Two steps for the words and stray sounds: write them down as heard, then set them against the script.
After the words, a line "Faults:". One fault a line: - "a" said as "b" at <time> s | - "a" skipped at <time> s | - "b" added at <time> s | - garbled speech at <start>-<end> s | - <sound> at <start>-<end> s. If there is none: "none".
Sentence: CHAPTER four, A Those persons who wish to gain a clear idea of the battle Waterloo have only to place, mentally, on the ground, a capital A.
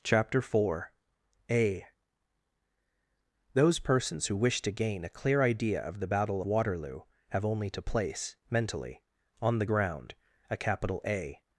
CHAPTER four, A Those persons who wish to gain a clear idea of the battle Waterloo have only to place, mentally, on the ground, a capital A.
Faults:
none